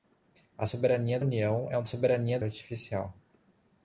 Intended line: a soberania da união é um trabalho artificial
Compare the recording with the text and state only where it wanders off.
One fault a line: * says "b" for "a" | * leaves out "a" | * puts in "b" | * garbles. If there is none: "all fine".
* leaves out "da"
* says "soberania" for "trabalho"